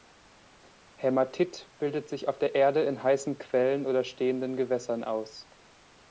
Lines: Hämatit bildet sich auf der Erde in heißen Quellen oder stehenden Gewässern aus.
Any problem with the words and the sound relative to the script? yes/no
no